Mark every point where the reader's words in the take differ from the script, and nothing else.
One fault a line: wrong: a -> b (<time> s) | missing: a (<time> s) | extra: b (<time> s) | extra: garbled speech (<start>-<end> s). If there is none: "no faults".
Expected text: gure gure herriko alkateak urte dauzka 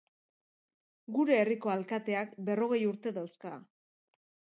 missing: gure (1.4 s)
extra: berrogei (2.5 s)